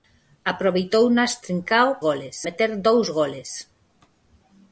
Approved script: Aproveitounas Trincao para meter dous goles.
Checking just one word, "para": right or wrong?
wrong